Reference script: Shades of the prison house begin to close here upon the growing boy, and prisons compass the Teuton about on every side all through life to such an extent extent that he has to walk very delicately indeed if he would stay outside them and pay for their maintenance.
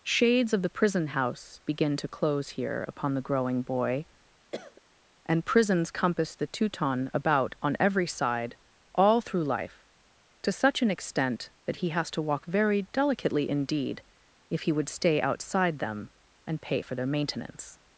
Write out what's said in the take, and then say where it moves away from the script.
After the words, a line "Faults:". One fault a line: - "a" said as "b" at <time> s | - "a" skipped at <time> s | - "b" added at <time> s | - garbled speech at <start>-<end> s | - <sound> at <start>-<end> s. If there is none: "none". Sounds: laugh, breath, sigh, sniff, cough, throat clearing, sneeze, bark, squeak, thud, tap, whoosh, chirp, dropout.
Shades of the prison house begin to close here upon the growing boy, and prisons compass the Teuton about on every side all through life to such an extent that he has to walk very delicately indeed if he would stay outside them and pay for their maintenance.
Faults:
- cough at 4.5-4.8 s
- "extent" skipped at 11.5 s